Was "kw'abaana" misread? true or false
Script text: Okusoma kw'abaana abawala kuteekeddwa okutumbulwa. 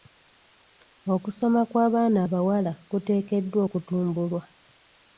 false